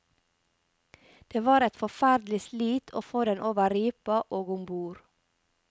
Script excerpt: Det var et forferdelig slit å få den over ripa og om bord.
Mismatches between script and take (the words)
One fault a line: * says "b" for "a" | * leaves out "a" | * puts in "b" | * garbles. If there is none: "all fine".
all fine